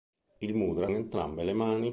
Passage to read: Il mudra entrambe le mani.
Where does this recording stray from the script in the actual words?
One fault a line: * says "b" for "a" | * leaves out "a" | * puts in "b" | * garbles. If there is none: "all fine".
all fine